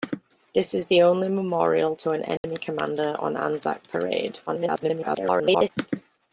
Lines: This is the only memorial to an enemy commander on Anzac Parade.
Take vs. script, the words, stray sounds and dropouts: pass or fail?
fail